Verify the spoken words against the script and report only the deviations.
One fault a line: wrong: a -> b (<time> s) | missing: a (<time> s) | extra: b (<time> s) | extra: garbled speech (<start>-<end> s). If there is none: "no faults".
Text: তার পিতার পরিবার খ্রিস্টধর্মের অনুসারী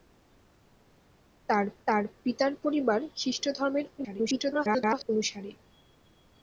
extra: তার (1.9 s)
extra: garbled speech (4.0-5.0 s)